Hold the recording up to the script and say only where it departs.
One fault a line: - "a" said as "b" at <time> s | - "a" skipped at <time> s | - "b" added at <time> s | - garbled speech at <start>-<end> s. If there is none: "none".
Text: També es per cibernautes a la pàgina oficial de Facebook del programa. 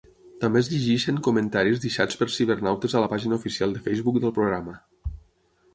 - "llegeixen comentaris deixats" added at 0.7 s